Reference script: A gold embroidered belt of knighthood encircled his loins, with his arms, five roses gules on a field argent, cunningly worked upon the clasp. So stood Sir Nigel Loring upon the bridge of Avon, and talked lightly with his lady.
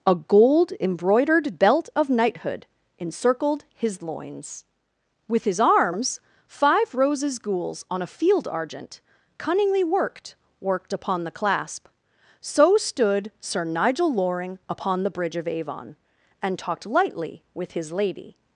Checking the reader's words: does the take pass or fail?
fail